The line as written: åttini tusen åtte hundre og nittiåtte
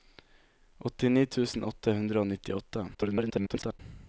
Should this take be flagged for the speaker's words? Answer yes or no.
yes